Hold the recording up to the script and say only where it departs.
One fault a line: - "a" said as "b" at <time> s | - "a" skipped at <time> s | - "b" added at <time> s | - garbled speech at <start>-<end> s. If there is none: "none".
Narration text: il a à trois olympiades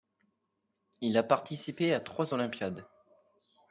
- "participé" added at 1.2 s